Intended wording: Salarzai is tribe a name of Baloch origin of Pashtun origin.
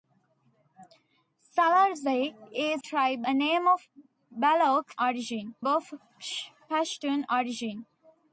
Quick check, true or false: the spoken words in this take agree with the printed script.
true